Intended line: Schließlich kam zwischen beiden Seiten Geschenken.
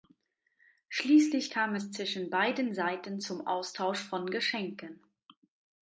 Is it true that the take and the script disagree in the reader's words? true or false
true